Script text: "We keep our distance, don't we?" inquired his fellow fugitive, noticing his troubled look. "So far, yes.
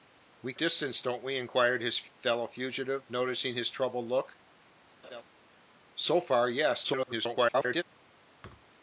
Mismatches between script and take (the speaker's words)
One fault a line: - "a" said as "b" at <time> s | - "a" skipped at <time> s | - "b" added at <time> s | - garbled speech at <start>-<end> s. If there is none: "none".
- "keep our" skipped at 0.6 s
- garbled speech at 6.8-7.8 s